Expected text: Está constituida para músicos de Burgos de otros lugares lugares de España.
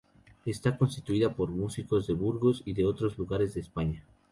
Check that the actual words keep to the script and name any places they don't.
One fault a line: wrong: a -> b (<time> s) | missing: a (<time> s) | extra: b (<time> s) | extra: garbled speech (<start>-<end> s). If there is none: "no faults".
wrong: para -> por (1.4 s)
extra: y (2.6 s)
missing: lugares (3.5 s)